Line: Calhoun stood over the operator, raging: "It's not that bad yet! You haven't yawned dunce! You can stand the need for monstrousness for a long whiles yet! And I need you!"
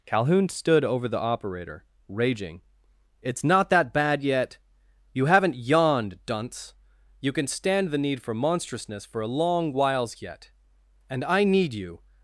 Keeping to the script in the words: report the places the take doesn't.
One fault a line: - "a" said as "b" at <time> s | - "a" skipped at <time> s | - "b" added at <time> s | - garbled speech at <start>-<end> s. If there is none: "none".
none